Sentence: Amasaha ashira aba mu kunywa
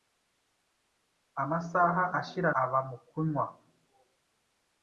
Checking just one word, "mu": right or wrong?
right